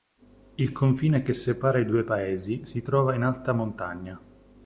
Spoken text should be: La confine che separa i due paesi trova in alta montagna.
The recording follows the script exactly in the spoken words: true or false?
false